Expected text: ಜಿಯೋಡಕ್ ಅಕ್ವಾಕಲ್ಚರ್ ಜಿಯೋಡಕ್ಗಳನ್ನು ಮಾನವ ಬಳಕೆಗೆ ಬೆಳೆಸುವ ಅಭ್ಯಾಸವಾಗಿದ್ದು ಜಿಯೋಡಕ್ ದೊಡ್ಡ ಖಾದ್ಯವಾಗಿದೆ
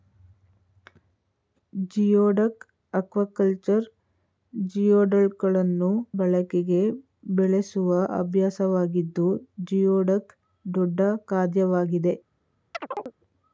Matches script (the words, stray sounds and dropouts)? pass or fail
fail